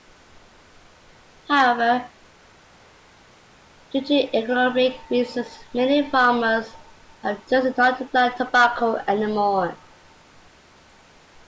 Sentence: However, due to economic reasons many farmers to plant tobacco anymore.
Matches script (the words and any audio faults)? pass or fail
fail